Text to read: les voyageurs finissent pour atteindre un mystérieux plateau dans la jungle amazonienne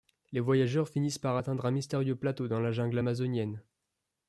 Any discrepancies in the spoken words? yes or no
yes